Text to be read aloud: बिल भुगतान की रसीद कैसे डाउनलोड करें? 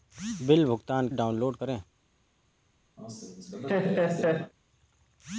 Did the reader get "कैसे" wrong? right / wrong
wrong